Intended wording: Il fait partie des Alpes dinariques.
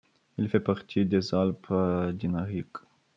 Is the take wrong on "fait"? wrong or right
right